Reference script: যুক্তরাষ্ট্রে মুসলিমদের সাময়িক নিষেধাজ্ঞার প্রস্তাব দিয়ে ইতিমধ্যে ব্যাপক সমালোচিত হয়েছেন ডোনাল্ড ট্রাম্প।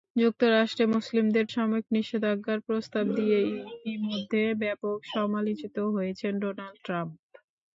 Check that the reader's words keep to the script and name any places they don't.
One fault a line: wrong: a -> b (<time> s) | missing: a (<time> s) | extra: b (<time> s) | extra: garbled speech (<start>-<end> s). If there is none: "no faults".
no faults